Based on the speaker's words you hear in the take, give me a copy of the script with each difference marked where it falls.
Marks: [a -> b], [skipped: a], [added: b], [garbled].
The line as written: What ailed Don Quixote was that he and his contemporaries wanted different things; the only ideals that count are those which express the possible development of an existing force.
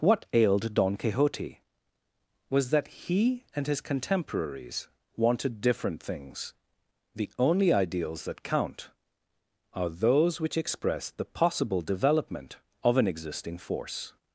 What ailed Don Quixote was that he and his contemporaries wanted different things; the only ideals that count are those which express the possible development of an existing force.